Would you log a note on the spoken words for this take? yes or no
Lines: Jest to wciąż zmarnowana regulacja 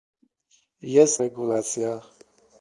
yes